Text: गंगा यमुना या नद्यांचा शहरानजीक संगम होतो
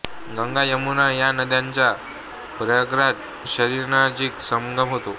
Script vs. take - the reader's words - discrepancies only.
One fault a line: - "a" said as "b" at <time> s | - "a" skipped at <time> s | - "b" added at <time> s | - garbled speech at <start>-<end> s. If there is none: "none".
- "प्रयागराज" added at 2.6 s